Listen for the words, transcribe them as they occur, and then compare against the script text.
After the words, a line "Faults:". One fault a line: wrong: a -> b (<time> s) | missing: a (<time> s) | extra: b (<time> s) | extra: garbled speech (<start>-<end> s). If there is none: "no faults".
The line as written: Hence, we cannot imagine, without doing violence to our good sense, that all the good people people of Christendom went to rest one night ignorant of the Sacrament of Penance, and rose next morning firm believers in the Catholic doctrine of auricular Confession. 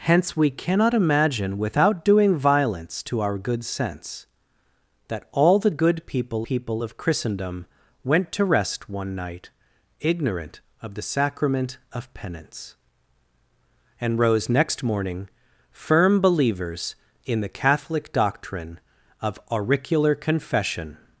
Hence, we cannot imagine, without doing violence to our good sense, that all the good people people of Christendom went to rest one night ignorant of the Sacrament of Penance, and rose next morning firm believers in the Catholic doctrine of auricular Confession.
Faults:
no faults